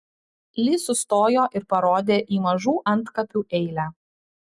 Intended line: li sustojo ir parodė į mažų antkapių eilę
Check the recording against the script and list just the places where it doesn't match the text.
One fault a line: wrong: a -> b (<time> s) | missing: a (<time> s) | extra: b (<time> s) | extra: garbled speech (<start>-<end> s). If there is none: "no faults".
no faults